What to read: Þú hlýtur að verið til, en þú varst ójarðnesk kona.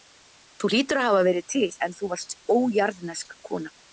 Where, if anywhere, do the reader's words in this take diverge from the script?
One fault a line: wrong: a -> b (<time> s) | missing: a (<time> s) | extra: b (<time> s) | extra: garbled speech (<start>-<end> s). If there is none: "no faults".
extra: hafa (1.1 s)